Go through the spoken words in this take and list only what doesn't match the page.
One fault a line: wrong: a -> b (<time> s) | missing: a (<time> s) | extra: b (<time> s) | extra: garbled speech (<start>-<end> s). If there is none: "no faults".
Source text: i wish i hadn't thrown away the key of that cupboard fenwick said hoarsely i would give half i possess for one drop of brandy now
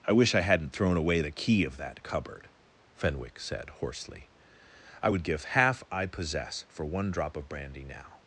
no faults